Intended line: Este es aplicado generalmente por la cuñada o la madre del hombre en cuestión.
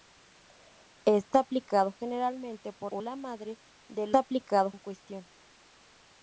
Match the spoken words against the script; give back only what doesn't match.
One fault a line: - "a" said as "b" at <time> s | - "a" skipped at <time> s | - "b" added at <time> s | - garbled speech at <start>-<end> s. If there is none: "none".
- "es" skipped at 1.4 s
- "la cuñada" skipped at 2.9 s
- "hombre" said as "aplicado" at 4.1 s